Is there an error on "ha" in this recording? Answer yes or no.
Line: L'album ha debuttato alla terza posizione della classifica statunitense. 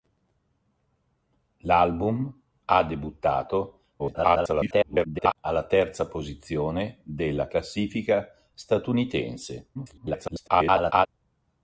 no